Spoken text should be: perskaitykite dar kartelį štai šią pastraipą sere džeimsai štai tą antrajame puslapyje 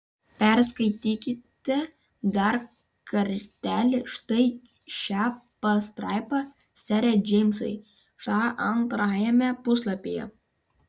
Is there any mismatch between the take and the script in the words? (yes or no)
yes